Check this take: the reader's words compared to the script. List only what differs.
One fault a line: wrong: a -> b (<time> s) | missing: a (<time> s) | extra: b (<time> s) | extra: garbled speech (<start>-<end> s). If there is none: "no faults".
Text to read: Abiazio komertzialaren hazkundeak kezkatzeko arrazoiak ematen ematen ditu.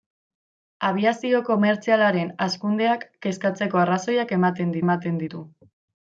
no faults